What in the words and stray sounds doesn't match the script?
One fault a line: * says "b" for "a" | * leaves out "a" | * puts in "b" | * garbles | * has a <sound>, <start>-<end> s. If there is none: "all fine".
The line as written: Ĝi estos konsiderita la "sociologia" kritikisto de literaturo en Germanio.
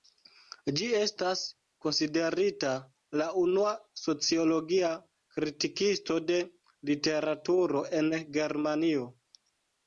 * says "estas" for "estos"
* puts in "unua"